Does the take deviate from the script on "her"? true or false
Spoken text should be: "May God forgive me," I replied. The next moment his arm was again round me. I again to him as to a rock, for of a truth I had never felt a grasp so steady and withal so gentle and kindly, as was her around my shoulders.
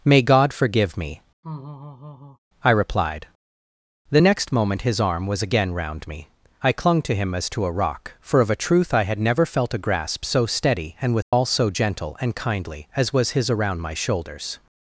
true